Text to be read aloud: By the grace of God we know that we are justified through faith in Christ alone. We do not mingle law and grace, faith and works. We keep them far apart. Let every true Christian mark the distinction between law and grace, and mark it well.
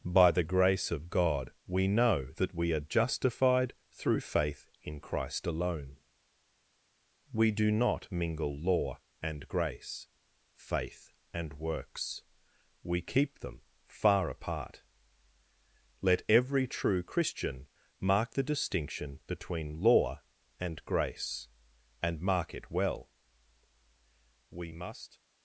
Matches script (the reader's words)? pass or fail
fail